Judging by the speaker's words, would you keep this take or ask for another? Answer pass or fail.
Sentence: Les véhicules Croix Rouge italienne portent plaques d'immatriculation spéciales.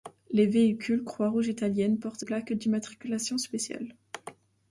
pass